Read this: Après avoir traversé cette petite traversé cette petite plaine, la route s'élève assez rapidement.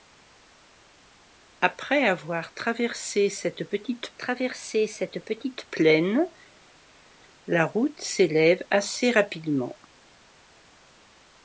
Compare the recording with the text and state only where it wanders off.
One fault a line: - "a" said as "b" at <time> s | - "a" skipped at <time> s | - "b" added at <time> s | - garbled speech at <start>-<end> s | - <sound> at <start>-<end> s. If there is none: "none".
none